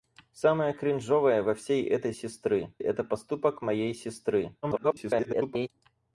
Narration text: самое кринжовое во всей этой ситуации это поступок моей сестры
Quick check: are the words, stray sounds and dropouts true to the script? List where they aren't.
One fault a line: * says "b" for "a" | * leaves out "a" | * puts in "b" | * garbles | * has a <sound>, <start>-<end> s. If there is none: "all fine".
* says "сестры" for "ситуации"
* garbles